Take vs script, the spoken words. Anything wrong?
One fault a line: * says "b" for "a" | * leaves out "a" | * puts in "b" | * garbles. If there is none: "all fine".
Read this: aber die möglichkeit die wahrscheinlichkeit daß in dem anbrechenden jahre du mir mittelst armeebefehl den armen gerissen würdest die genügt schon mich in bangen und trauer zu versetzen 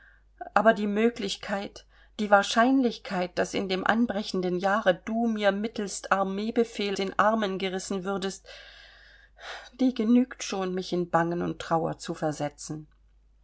all fine